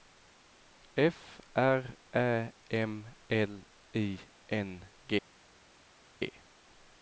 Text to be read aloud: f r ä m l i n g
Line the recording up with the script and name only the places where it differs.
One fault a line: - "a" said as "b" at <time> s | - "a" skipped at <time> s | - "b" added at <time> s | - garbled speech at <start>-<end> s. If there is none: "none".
none